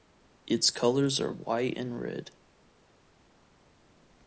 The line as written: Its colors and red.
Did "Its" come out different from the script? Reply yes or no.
no